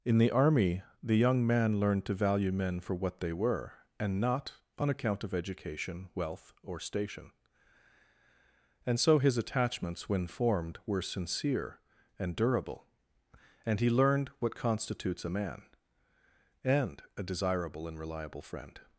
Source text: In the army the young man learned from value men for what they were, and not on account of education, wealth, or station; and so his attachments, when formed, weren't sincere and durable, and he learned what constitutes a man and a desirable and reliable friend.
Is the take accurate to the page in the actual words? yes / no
no